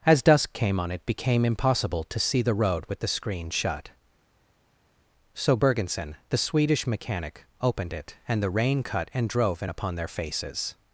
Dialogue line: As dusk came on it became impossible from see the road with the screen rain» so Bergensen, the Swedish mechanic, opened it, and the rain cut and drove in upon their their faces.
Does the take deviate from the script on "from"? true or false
true